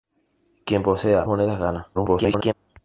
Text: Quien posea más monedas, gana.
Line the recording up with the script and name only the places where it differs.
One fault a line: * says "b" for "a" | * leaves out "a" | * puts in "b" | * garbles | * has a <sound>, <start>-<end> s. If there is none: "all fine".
* leaves out "más"
* garbles